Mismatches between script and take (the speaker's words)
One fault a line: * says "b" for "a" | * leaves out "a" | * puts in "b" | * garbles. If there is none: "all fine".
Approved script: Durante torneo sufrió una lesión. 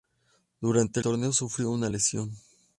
all fine